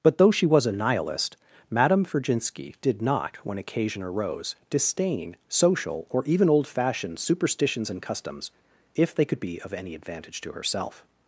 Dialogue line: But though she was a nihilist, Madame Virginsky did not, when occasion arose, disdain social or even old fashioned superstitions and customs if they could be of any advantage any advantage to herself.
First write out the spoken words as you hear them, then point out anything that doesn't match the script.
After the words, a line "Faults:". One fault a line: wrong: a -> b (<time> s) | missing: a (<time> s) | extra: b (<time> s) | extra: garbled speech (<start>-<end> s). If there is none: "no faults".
But though she was a nihilist, Madame Virginsky did not, when occasion arose, disdain social or even old fashioned superstitions and customs if they could be of any advantage to herself.
Faults:
missing: any advantage (10.4 s)